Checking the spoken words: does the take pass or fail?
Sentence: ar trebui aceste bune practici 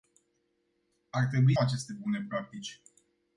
pass